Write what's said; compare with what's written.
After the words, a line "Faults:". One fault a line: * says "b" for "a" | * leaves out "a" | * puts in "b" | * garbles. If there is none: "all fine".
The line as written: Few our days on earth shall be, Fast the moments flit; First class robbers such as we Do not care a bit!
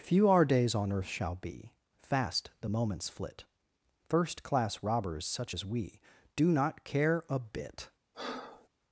Few our days on earth shall be, Fast the moments flit; First class robbers such as we Do not care a bit!
Faults:
all fine